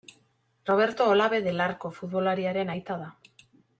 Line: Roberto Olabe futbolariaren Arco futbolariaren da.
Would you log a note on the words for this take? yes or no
yes